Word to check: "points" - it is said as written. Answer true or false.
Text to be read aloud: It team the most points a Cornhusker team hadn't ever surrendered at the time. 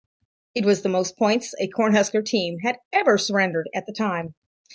true